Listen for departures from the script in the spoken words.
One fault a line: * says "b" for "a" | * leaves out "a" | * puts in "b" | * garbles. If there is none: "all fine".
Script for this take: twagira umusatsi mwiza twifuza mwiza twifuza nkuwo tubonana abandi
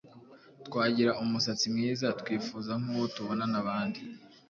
* leaves out "mwiza twifuza"